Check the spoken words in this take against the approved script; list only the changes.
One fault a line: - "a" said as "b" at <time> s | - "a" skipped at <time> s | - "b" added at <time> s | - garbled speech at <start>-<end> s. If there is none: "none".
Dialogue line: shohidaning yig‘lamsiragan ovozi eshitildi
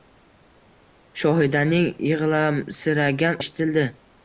- "ovozi" skipped at 3.4 s